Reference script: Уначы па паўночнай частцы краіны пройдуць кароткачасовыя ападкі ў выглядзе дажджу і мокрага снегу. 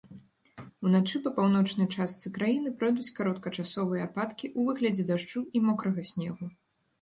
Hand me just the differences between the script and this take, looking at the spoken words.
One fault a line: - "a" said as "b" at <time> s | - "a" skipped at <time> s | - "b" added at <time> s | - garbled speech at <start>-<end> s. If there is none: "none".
none